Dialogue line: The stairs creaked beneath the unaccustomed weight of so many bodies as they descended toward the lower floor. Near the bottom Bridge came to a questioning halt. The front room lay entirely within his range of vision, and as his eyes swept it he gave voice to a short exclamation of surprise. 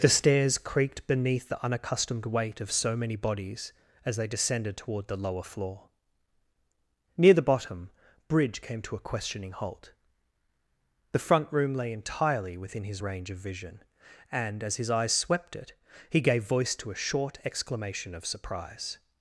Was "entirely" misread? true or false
false